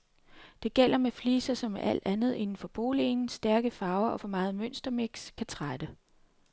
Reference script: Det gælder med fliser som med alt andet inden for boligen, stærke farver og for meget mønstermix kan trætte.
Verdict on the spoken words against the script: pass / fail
pass